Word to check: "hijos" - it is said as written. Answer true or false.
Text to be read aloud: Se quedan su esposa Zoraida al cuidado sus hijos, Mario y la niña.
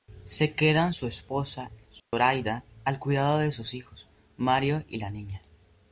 true